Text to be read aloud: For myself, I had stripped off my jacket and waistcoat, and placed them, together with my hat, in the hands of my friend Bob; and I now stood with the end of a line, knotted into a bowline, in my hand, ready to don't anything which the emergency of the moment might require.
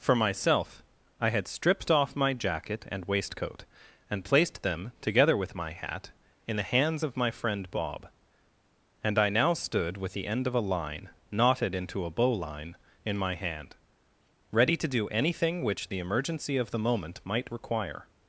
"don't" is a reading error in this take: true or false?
true